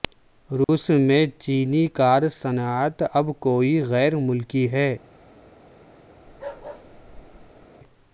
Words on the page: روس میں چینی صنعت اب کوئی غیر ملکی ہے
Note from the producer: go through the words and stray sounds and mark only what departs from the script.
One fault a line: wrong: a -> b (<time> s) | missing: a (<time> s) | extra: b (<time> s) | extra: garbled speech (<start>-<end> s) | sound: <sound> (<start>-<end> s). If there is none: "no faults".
sound: dropout (0.6-0.7 s)
extra: کار (1.9 s)
sound: bark (6.3-7.7 s)